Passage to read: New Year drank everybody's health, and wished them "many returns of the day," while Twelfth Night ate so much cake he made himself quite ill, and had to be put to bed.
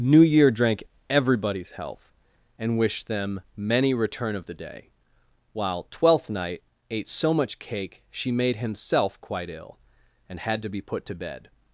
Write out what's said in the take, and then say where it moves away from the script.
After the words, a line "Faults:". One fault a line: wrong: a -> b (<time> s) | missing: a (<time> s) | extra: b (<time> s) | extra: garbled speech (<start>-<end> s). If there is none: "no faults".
New Year drank everybody's health, and wished them "many return of the day," while Twelfth Night ate so much cake she made himself quite ill, and had to be put to bed.
Faults:
wrong: returns -> return (3.9 s)
wrong: he -> she (8.1 s)